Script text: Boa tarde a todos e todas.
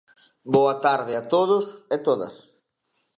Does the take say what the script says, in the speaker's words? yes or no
yes